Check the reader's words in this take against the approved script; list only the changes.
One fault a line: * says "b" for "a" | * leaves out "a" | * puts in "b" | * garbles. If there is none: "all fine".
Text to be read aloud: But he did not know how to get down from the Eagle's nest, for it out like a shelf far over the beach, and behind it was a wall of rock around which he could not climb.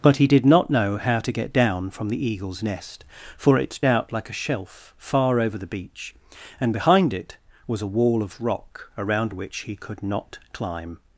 all fine